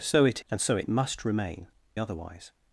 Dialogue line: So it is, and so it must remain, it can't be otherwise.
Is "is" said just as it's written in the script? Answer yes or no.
no